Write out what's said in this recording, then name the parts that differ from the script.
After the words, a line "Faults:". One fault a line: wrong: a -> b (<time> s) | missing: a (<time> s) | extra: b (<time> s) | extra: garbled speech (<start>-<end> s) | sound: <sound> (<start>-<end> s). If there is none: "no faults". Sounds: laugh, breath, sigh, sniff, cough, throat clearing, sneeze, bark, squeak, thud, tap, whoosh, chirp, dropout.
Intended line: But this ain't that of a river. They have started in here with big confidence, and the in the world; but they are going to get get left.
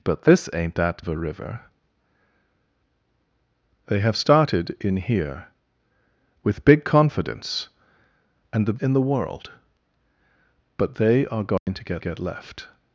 But this ain't that of a river. They have started in here with big confidence, and the in the world; but they are going to get get left.
Faults:
sound: dropout (11.6-11.7 s)